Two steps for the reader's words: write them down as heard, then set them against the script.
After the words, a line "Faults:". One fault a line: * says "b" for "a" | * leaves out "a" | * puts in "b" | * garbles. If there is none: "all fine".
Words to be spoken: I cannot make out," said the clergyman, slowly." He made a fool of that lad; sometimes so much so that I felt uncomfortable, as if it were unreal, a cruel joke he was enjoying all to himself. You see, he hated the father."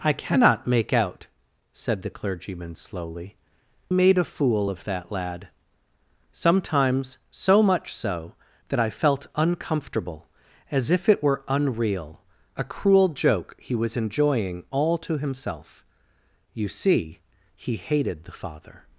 I cannot make out," said the clergyman, slowly." Made a fool of that lad; sometimes so much so that I felt uncomfortable, as if it were unreal, a cruel joke he was enjoying all to himself. You see, he hated the father."
Faults:
* leaves out "He"